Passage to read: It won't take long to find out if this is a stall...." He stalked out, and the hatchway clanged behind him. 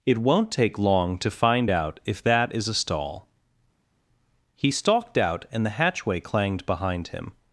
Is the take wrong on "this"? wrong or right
wrong